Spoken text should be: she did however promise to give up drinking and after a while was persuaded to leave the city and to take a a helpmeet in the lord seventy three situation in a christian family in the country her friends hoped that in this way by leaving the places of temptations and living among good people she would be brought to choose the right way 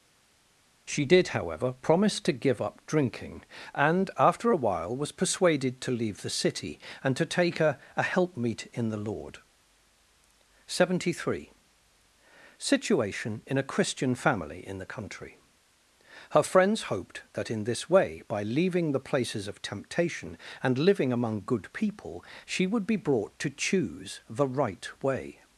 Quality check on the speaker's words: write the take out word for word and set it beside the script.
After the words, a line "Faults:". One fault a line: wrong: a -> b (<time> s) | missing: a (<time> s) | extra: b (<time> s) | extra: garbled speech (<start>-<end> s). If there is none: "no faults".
she did however promise to give up drinking and after a while was persuaded to leave the city and to take a a helpmeet in the lord seventy three situation in a christian family in the country her friends hoped that in this way by leaving the places of temptation and living among good people she would be brought to choose the right way
Faults:
wrong: temptations -> temptation (19.6 s)